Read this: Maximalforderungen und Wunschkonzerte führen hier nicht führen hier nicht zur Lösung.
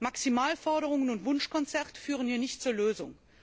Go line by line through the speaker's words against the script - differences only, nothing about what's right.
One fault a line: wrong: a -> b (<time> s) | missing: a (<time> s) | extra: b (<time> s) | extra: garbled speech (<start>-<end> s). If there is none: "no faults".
missing: führen hier nicht (2.6 s)